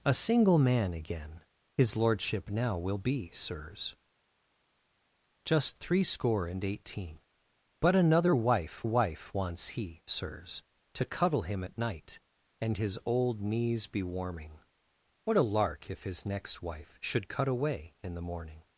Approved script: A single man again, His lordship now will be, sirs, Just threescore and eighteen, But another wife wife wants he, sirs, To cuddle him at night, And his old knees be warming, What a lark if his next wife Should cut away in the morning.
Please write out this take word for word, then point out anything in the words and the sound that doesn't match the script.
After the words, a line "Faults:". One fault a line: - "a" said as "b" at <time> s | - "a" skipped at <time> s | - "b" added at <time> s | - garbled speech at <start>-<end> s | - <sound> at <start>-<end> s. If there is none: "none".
A single man again, His lordship now will be, sirs, Just threescore and eighteen, But another wife wife wants he, sirs, To cuddle him at night, And his old knees be warming, What a lark if his next wife Should cut away in the morning.
Faults:
none